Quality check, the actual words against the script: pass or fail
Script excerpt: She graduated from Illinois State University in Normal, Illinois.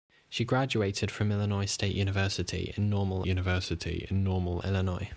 fail